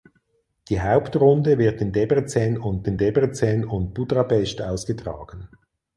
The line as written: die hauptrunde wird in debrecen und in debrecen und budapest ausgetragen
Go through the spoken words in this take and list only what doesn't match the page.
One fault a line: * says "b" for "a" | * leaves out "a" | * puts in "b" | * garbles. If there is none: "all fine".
all fine